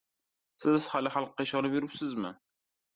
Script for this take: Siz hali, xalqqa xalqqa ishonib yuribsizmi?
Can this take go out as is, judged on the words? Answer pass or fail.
fail